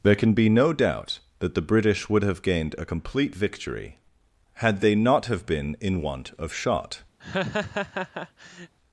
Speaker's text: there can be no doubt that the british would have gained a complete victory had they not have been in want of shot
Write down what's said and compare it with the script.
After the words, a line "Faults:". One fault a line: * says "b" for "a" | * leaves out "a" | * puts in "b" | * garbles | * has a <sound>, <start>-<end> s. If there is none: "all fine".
there can be no doubt that the british would have gained a complete victory had they not have been in want of shot
Faults:
* has a laugh, 7.2-8.7 s